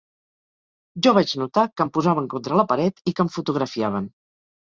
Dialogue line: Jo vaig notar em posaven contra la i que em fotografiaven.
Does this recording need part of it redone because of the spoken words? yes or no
yes